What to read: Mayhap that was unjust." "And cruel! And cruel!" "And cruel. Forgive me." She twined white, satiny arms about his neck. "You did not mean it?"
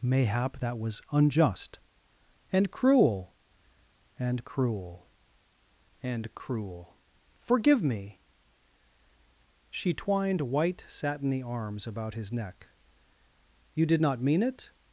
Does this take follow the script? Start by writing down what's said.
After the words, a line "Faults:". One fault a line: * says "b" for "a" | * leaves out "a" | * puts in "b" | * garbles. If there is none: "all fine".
Mayhap that was unjust." "And cruel! And cruel!" "And cruel. Forgive me." She twined white, satiny arms about his neck. "You did not mean it?"
Faults:
all fine